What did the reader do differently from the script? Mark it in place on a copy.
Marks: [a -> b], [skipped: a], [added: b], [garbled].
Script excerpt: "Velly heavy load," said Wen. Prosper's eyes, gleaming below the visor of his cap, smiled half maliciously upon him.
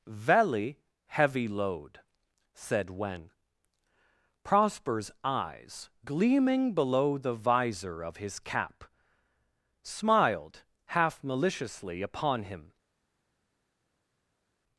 "Velly heavy load," said Wen. Prosper's eyes, gleaming below the visor of his cap, smiled half maliciously upon him.